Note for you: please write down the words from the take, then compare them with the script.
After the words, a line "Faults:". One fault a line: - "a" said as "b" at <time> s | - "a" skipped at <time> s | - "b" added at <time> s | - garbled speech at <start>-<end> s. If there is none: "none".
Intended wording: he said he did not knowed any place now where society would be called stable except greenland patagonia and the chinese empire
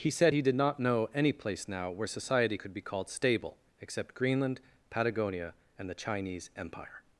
he said he did not know any place now where society could be called stable except greenland patagonia and the chinese empire
Faults:
- "knowed" said as "know" at 0.8 s
- "would" said as "could" at 2.5 s